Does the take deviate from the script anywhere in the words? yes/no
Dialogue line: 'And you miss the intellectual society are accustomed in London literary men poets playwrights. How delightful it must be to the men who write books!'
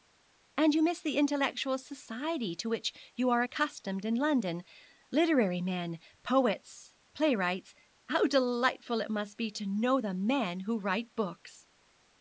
yes